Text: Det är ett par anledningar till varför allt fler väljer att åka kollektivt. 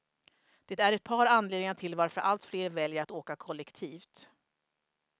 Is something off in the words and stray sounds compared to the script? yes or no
no